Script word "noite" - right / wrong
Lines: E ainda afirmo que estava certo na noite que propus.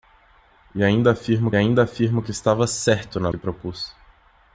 wrong